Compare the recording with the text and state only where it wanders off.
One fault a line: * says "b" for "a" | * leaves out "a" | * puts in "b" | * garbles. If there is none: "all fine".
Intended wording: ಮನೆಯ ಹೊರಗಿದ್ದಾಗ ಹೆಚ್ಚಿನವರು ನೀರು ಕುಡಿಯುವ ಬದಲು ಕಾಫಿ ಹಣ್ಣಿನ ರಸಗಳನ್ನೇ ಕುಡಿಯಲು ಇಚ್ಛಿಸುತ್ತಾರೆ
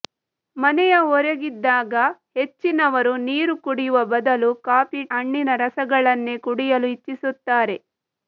all fine